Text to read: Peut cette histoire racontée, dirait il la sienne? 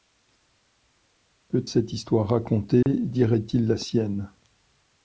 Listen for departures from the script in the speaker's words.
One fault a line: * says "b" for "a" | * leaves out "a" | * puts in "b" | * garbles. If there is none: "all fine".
all fine